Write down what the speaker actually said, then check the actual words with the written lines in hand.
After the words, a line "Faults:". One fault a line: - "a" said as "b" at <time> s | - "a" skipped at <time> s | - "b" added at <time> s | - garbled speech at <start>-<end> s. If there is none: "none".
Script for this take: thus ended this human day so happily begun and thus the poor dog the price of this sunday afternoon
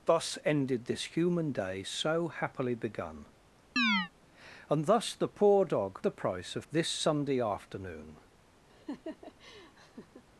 thus ended this human day so happily begun and thus the poor dog the price of this sunday afternoon
Faults:
none